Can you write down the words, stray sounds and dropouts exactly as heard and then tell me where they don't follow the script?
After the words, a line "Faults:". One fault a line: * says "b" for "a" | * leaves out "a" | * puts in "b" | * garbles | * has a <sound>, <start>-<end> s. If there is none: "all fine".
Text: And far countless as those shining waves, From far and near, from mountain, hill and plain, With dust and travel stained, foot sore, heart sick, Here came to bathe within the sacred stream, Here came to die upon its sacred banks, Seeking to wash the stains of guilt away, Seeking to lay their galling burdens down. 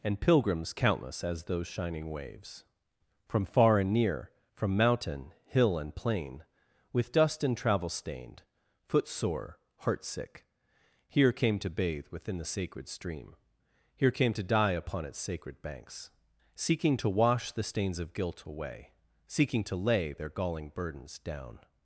And pilgrims countless as those shining waves, From far and near, from mountain, hill and plain, With dust and travel stained, foot sore, heart sick, Here came to bathe within the sacred stream, Here came to die upon its sacred banks, Seeking to wash the stains of guilt away, Seeking to lay their galling burdens down.
Faults:
* says "pilgrims" for "far"